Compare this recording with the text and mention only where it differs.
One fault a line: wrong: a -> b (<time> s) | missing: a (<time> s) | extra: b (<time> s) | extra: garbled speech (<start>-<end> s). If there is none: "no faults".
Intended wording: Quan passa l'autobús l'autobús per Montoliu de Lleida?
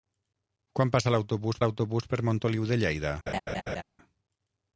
no faults